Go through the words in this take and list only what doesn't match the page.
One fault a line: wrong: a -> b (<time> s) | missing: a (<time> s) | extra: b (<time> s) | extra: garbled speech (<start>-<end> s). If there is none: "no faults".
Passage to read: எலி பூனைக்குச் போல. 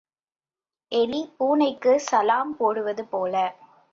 extra: சலாம் போடுவது (2.1 s)